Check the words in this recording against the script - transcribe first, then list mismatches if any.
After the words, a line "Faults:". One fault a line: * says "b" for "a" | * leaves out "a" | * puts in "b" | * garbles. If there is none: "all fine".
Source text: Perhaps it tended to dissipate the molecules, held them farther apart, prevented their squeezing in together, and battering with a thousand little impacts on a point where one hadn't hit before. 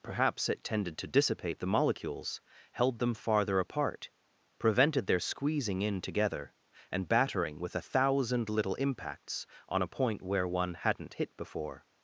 Perhaps it tended to dissipate the molecules, held them farther apart, prevented their squeezing in together, and battering with a thousand little impacts on a point where one hadn't hit before.
Faults:
all fine